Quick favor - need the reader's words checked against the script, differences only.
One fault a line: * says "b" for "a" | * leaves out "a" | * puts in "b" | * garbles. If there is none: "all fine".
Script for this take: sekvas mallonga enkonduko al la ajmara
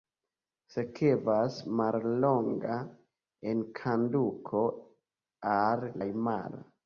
* leaves out "la"